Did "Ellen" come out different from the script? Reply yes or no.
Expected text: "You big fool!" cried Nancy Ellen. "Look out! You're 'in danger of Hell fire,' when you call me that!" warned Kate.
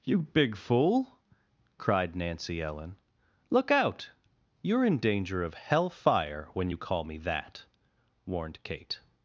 no